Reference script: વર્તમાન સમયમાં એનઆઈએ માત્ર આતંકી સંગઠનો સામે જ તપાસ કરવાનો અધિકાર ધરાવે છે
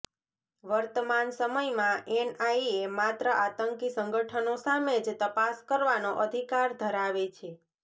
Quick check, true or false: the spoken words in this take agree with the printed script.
true